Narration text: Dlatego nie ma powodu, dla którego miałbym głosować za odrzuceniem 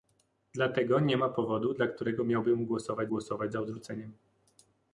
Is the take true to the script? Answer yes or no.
no